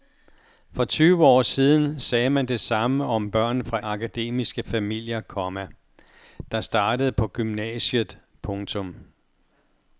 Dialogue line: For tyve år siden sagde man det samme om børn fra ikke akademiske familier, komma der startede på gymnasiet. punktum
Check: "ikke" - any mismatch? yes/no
yes